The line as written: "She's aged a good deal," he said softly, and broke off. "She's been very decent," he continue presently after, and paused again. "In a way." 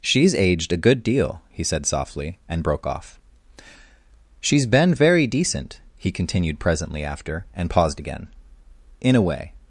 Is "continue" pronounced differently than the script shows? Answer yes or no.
yes